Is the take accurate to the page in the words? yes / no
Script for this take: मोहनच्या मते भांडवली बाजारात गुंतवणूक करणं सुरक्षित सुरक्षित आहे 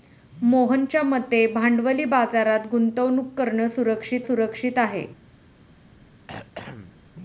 yes